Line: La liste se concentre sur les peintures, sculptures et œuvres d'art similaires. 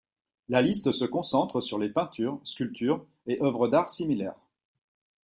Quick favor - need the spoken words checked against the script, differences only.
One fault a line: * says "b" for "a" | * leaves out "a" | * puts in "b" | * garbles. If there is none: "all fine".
all fine